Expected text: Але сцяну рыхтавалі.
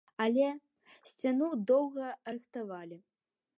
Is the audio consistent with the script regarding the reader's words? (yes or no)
no